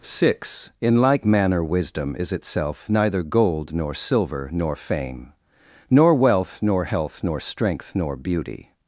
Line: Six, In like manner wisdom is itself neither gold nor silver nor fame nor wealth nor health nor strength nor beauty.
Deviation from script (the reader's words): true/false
false